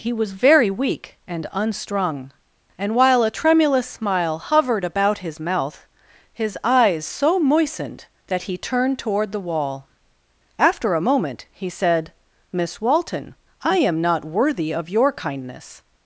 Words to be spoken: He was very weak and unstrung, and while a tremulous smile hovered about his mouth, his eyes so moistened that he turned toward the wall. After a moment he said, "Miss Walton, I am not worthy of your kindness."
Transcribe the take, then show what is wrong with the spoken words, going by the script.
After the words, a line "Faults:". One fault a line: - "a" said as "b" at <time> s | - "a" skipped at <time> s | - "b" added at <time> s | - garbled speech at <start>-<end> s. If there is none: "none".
He was very weak and unstrung, and while a tremulous smile hovered about his mouth, his eyes so moistened that he turned toward the wall. After a moment he said, "Miss Walton, I am not worthy of your kindness."
Faults:
none